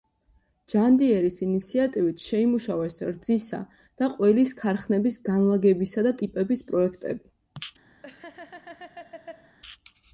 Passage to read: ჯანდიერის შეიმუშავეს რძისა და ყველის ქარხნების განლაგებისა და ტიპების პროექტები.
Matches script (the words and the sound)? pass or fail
fail